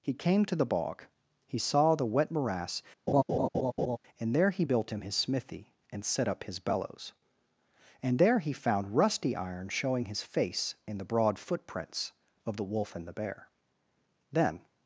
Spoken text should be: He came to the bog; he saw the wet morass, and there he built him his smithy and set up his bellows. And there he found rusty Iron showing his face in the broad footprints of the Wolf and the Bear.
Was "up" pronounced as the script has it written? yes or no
yes